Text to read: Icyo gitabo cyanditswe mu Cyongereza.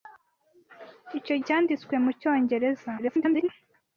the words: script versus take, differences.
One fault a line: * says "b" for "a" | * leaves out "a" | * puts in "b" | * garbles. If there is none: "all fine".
* leaves out "gitabo"
* garbles